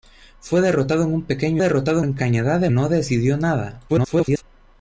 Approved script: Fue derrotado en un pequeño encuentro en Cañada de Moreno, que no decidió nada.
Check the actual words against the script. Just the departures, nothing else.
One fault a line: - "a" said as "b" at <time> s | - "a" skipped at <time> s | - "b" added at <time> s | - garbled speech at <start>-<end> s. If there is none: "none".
- "encuentro" said as "derrotado" at 1.6 s
- "Moreno que" skipped at 2.7 s
- garbled speech at 3.9-4.4 s